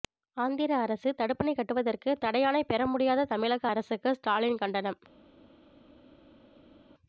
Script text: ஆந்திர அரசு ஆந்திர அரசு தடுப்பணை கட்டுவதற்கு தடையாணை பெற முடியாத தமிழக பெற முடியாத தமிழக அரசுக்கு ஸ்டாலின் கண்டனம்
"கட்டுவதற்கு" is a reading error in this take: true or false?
false